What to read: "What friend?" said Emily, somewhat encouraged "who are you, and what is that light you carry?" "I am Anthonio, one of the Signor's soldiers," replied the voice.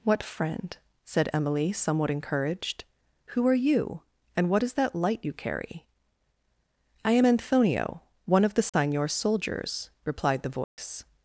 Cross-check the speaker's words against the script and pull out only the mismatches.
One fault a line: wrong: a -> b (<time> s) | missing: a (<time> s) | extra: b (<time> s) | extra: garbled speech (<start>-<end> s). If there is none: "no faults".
no faults